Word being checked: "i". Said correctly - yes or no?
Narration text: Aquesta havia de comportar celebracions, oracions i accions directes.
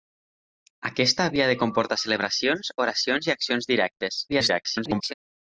yes